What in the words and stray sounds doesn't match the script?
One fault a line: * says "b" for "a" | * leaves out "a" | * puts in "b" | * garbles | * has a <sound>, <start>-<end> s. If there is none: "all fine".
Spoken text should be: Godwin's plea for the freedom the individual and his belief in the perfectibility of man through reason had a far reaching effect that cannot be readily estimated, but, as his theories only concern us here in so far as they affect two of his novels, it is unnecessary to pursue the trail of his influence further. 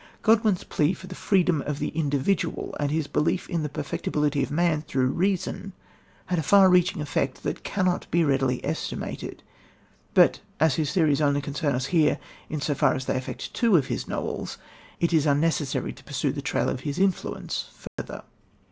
* puts in "of"
* has a dropout, 17.9-18.0 s